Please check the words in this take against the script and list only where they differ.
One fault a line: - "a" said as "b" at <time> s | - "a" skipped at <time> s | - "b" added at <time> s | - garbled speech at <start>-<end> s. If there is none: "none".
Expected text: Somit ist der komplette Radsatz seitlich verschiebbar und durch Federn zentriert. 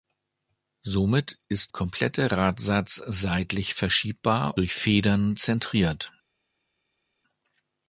- "der" skipped at 1.7 s
- "und" skipped at 4.6 s